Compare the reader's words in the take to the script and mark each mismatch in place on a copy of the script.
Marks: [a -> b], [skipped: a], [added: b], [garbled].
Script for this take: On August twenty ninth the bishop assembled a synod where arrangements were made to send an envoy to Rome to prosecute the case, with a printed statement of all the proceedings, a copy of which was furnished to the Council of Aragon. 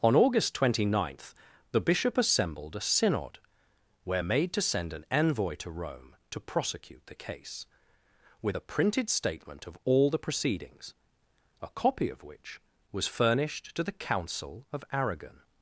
On August twenty ninth the bishop assembled a synod where [skipped: arrangements were] made to send an envoy to Rome to prosecute the case, with a printed statement of all the proceedings, a copy of which was furnished to the Council of Aragon.